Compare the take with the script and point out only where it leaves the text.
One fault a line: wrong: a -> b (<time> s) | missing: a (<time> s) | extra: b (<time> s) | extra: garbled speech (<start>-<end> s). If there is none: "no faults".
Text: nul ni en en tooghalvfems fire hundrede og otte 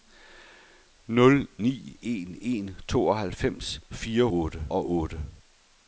wrong: hundrede -> otte (4.3 s)